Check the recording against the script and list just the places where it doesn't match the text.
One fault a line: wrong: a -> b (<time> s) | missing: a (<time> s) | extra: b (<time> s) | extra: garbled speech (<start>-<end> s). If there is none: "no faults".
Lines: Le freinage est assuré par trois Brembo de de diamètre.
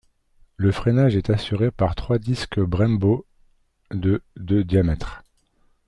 extra: disques (2.2 s)